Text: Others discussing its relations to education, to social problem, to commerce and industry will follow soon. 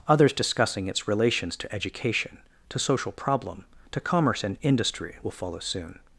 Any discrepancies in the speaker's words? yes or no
no